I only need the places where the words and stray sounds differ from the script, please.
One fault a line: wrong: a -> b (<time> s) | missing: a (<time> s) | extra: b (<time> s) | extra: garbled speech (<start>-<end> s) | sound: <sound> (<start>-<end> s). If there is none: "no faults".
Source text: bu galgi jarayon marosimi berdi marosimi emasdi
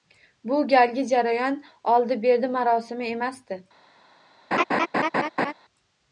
wrong: marosimi -> oldi (1.8 s)
sound: laugh (4.5-5.5 s)